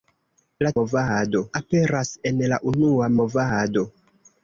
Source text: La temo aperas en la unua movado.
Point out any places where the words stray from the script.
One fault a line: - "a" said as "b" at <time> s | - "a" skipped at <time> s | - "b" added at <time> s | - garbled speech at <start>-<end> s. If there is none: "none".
- "temo" said as "movado" at 0.8 s